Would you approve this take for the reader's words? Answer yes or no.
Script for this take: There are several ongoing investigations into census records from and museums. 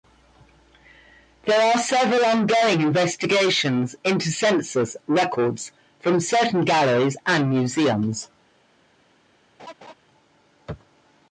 no